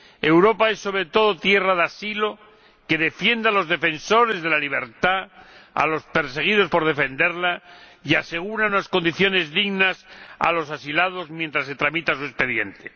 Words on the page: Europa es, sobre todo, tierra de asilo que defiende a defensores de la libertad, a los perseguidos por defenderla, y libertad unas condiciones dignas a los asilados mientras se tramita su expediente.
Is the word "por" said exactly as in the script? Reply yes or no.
yes